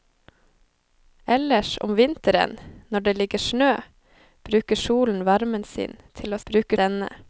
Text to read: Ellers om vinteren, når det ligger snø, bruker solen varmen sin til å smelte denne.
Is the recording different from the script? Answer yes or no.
yes